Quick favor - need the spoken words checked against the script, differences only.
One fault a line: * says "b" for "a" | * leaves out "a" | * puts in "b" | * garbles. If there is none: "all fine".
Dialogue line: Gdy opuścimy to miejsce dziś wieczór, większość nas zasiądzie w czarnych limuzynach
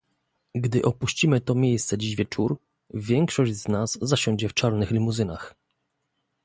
* puts in "z"